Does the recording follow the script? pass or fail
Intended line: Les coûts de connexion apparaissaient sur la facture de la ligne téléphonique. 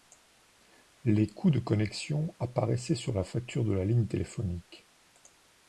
pass